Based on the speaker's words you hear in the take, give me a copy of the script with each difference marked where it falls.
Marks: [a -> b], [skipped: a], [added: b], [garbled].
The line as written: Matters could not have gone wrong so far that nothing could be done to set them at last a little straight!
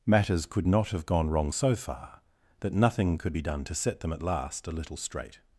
Matters could not have gone wrong so far that nothing could be done to set them at last a little straight!